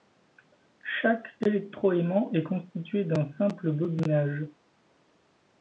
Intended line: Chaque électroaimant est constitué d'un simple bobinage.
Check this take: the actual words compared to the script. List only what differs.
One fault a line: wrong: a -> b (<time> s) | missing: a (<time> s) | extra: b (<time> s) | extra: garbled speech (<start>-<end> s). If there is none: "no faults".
no faults